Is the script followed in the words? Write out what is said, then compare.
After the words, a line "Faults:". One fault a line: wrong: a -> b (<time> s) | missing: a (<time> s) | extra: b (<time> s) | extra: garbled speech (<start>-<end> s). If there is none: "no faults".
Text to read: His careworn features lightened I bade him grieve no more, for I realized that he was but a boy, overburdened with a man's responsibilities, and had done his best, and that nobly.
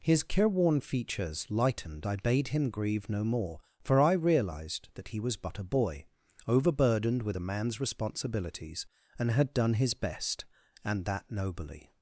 His careworn features lightened I bade him grieve no more, for I realized that he was but a boy, overburdened with a man's responsibilities, and had done his best, and that nobly.
Faults:
no faults